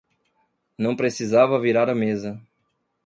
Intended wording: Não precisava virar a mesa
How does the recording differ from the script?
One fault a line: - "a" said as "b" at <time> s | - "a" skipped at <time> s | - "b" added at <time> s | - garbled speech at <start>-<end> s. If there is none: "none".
none